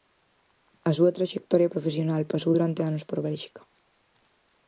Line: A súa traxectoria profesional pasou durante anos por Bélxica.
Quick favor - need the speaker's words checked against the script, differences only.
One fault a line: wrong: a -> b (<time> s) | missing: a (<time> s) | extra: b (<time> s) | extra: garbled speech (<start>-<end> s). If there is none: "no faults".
no faults